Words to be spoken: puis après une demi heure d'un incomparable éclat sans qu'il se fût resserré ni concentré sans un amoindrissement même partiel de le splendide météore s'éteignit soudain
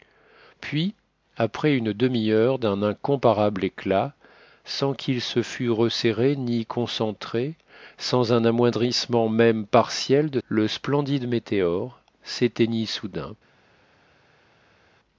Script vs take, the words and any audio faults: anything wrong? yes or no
no